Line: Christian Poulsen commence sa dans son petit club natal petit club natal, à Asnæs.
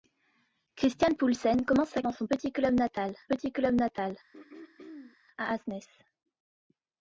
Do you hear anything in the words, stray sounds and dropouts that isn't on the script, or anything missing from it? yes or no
yes